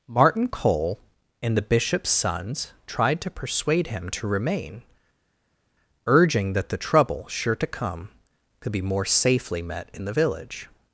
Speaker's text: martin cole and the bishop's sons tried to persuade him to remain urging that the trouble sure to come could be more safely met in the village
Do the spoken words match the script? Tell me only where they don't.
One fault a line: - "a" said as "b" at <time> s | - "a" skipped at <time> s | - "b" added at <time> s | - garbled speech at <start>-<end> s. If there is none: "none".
none